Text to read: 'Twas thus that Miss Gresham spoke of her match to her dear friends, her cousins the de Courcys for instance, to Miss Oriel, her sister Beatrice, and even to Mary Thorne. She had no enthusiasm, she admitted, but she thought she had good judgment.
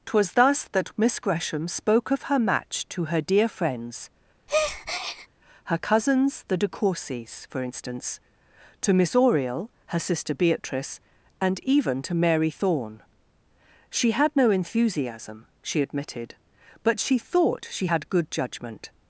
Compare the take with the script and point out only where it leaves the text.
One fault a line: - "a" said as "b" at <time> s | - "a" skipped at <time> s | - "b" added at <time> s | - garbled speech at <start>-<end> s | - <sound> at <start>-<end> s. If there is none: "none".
- breath at 4.5-5.3 s